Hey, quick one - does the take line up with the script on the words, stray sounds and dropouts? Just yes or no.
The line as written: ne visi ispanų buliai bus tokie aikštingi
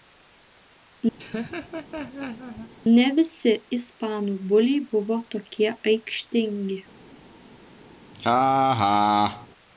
no